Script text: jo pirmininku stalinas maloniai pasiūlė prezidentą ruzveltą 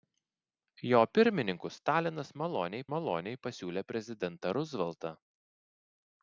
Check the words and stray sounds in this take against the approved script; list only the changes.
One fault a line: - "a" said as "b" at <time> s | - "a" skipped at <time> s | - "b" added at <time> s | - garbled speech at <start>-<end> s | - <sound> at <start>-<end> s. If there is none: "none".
- "maloniai" added at 2.9 s